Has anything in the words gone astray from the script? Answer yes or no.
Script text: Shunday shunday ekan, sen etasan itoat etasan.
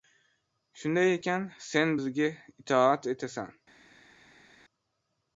yes